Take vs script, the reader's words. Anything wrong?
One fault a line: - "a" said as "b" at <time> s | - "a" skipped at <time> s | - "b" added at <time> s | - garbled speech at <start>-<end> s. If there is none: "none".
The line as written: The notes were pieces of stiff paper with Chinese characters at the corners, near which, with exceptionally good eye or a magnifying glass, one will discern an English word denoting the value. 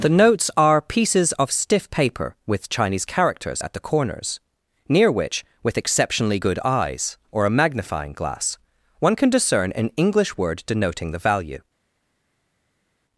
- "were" said as "are" at 0.6 s
- "eye" said as "eyes" at 6.6 s
- "will" said as "can" at 9.1 s